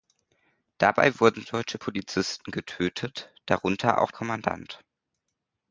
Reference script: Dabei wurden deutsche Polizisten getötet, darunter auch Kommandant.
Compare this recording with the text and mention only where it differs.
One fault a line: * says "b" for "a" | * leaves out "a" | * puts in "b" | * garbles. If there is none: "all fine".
all fine